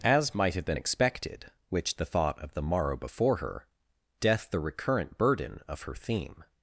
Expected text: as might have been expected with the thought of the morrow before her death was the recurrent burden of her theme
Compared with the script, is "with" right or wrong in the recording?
wrong